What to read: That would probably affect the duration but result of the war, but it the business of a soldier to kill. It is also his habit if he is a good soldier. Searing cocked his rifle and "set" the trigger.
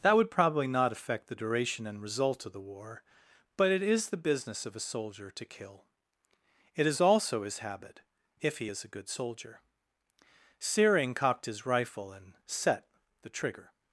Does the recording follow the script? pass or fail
fail